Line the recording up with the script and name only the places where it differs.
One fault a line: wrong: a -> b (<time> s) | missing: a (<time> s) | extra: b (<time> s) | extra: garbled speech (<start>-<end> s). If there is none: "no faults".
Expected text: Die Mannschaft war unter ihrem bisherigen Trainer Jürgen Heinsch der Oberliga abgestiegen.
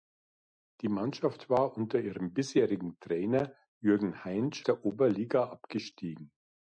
no faults